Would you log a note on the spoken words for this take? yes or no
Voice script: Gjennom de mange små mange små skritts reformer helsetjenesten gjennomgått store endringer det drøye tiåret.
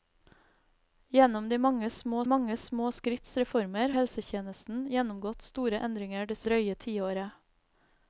no